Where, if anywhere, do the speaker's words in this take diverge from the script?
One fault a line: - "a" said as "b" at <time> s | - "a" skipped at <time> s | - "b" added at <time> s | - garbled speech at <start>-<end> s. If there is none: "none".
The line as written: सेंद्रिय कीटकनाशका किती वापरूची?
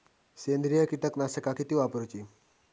none